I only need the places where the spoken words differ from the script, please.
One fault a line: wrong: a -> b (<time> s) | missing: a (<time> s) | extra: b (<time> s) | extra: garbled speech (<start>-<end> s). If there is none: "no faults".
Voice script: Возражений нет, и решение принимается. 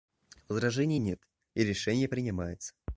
no faults